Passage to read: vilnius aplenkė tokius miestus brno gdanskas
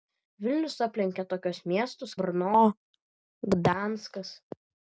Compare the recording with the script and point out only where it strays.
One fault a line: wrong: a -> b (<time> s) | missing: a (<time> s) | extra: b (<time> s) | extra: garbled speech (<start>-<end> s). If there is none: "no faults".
no faults